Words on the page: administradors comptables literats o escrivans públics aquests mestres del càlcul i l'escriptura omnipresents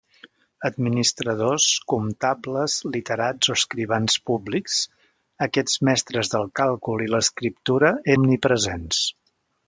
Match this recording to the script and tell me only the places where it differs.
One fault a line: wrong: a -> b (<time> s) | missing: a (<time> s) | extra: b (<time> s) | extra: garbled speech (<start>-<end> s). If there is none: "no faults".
no faults